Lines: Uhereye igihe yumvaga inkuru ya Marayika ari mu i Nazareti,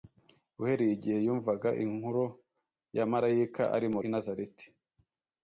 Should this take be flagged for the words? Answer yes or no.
no